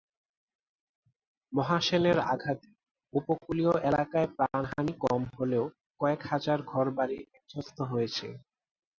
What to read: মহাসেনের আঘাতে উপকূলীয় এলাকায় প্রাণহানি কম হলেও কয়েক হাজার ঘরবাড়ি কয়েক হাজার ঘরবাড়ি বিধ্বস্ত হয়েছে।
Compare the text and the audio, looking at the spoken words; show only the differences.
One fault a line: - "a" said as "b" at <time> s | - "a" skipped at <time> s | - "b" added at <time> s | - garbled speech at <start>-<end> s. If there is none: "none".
- "কয়েক হাজার ঘরবাড়ি" skipped at 7.2 s